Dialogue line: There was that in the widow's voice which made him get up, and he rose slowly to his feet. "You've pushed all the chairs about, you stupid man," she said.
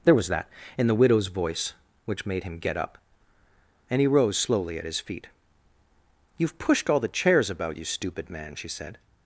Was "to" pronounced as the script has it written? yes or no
no